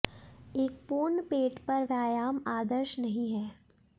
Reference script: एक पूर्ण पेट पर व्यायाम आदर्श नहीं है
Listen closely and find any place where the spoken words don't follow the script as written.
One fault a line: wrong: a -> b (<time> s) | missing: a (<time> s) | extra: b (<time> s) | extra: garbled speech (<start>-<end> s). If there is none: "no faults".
no faults